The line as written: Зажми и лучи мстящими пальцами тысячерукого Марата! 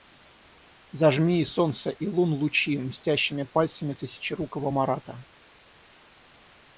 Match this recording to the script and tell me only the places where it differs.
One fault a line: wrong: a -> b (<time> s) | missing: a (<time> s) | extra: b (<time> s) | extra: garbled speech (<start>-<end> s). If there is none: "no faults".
extra: солнца и лун (1.4 s)